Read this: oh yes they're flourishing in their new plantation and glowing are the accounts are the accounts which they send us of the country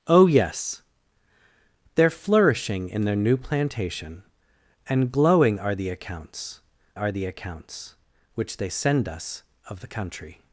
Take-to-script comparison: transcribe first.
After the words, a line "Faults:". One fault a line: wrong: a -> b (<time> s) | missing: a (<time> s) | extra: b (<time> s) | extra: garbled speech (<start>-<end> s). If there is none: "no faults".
oh yes they're flourishing in their new plantation and glowing are the accounts are the accounts which they send us of the country
Faults:
no faults